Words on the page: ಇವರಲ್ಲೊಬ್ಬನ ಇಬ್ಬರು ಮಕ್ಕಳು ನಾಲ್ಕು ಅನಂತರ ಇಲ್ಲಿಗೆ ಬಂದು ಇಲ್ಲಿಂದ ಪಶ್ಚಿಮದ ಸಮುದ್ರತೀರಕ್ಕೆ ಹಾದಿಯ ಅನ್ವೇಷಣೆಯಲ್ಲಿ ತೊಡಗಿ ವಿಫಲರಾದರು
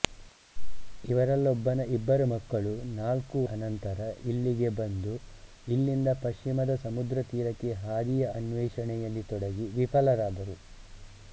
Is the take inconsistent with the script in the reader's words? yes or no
no